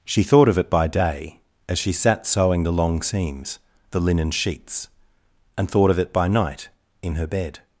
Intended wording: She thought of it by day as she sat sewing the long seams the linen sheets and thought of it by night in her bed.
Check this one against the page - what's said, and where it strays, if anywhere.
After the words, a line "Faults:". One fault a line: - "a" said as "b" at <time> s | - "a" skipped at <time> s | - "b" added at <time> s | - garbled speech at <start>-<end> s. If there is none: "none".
She thought of it by day as she sat sewing the long seams the linen sheets and thought of it by night in her bed.
Faults:
none